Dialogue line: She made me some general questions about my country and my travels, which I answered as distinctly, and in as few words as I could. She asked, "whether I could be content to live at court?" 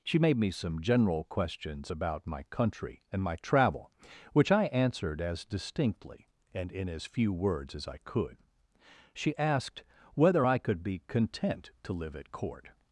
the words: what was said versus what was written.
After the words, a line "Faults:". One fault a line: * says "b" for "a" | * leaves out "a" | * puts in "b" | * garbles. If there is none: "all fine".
She made me some general questions about my country and my travel, which I answered as distinctly, and in as few words as I could. She asked, "whether I could be content to live at court?"
Faults:
* says "travel" for "travels"